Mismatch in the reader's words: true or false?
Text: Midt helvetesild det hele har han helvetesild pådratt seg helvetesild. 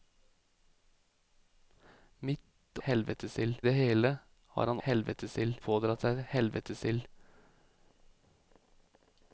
false